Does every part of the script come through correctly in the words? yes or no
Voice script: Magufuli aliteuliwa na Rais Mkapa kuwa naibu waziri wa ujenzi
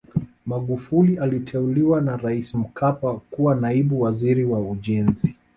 yes